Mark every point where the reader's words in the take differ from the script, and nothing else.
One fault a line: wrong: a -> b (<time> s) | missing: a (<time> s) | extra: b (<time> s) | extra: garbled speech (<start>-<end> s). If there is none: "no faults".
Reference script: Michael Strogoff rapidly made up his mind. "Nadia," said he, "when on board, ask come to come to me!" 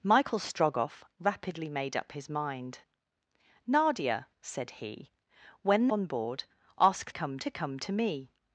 no faults